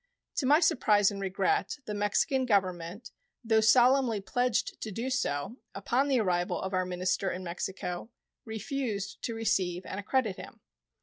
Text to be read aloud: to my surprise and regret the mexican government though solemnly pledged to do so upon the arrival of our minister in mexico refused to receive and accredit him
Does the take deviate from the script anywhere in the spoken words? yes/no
no